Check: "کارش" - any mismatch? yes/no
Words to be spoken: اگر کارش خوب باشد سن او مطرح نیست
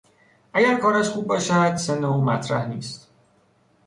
no